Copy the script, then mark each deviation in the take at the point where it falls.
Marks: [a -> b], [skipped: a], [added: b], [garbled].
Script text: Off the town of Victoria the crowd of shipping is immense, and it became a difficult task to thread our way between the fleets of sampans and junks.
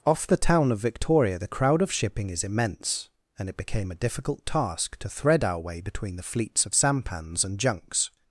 Off the town of Victoria the crowd of shipping is immense, and it became a difficult task to thread our way between the fleets of sampans and junks.